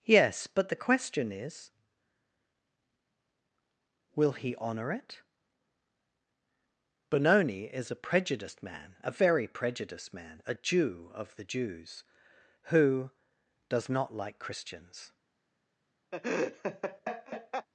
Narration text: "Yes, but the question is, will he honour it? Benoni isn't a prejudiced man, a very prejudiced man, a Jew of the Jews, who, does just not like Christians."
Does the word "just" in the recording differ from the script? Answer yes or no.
yes